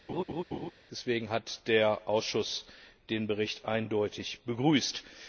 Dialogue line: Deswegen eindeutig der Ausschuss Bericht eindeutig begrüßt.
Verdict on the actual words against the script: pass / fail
fail